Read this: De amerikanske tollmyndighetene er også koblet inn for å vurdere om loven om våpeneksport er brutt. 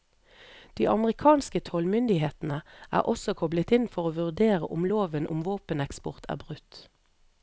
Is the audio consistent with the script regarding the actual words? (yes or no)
yes